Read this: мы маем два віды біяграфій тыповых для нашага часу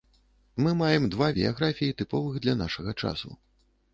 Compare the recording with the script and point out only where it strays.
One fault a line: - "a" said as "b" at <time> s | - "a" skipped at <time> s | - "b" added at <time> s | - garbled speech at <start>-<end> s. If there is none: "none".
- "віды" skipped at 1.3 s